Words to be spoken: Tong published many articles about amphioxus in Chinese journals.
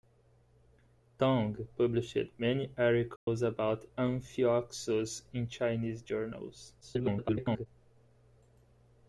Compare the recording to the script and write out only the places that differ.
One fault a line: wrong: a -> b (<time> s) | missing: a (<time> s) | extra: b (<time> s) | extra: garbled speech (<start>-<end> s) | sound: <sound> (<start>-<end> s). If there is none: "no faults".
sound: dropout (3.2-3.3 s)
extra: garbled speech (6.8-7.7 s)